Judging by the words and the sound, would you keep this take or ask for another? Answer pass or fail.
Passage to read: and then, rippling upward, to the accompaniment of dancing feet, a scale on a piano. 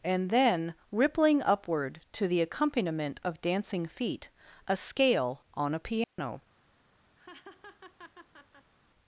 fail